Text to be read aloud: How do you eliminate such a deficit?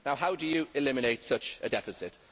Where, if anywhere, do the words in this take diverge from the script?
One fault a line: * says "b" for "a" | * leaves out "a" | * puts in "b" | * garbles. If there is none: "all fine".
all fine